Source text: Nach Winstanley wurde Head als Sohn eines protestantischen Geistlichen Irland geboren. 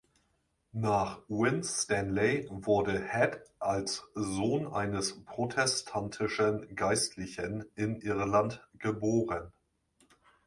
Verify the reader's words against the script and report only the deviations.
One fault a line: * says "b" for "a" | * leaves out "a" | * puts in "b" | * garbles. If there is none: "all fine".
* puts in "in"